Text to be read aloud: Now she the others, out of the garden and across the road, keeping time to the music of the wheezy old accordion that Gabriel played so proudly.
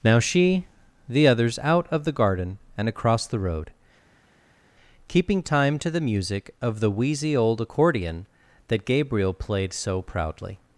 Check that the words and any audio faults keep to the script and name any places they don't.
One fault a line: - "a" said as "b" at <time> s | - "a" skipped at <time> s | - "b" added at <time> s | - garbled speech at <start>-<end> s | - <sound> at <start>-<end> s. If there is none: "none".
none